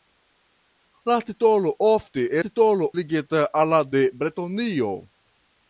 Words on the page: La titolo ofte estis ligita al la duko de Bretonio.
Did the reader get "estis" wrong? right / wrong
wrong